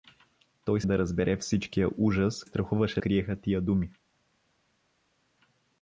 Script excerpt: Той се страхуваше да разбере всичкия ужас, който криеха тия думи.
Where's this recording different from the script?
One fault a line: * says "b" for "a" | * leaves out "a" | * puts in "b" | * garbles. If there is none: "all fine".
* leaves out "се страхуваше"
* says "страхуваше" for "който"